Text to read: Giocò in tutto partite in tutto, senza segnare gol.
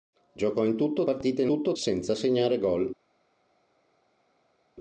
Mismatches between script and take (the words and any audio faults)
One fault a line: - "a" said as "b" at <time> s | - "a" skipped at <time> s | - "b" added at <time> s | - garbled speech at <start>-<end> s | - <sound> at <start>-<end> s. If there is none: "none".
none